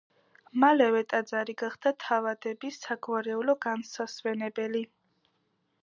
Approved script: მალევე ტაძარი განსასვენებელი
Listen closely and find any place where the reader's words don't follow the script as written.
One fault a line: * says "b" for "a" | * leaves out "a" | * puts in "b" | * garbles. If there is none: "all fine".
* puts in "გახდა თავადების საგვარეულო"